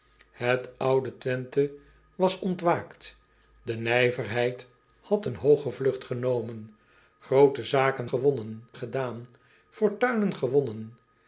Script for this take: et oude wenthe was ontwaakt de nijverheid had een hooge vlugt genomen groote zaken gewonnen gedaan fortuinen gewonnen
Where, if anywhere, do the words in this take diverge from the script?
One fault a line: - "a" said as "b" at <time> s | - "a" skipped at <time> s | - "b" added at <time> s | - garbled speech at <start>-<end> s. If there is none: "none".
none